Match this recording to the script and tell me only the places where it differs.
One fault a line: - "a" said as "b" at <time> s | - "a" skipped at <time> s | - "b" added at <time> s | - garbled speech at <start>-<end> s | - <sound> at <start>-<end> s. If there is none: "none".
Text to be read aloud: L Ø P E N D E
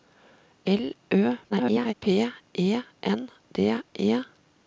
- garbled speech at 1.5-1.9 s